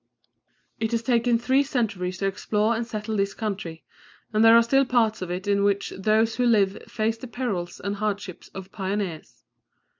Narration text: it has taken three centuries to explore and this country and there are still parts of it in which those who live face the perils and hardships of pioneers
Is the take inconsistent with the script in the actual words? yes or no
yes